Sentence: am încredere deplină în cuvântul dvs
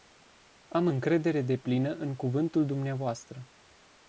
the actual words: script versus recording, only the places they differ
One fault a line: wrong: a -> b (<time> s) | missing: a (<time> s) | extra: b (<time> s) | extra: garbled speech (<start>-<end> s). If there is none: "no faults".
no faults